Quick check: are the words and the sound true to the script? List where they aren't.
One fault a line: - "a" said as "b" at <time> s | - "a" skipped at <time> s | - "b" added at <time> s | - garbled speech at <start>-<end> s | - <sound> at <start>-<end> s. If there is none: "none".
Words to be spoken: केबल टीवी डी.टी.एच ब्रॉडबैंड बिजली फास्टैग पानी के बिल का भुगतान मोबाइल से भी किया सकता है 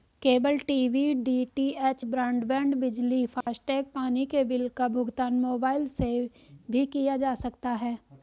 - dropout at 3.4-3.5 s
- "जा" added at 7.2 s